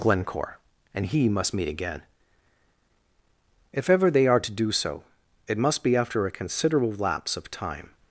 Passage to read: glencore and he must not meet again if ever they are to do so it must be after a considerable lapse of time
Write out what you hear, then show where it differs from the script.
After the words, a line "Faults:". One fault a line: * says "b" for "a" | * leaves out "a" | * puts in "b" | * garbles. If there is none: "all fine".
glencore and he must meet again if ever they are to do so it must be after a considerable lapse of time
Faults:
* leaves out "not"